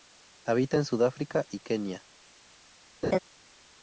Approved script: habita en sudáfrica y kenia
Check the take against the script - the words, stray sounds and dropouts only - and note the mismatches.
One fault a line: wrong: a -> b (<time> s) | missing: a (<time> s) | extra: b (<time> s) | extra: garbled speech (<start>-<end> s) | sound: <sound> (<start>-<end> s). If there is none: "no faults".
sound: laugh (3.0-3.2 s)